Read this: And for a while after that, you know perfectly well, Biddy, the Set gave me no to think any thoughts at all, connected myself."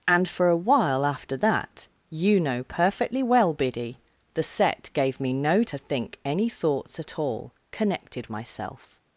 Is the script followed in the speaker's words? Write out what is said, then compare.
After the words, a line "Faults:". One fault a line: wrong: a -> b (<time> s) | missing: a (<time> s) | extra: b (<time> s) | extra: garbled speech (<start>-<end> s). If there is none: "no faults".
And for a while after that, you know perfectly well, Biddy, the Set gave me no to think any thoughts at all, connected myself."
Faults:
no faults